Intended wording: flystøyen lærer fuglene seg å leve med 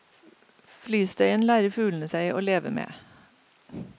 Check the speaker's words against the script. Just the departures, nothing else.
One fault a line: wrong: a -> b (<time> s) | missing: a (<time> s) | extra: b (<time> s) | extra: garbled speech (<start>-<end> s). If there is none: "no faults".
no faults